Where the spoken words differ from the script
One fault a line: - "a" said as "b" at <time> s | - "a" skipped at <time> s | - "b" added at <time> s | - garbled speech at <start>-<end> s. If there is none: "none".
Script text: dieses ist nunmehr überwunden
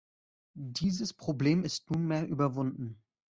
- "problem" added at 1.1 s